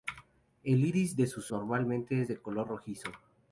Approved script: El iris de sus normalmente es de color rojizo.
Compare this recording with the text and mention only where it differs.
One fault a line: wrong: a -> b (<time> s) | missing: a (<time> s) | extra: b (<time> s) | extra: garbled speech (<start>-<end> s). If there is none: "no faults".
no faults